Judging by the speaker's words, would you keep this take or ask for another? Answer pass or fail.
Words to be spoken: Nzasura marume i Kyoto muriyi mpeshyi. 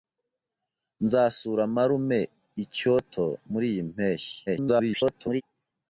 fail